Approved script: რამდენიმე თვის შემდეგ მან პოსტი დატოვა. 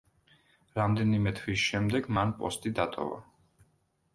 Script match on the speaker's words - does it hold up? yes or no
yes